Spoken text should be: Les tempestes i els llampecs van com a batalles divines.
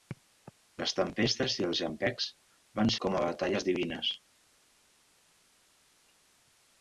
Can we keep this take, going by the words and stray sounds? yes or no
yes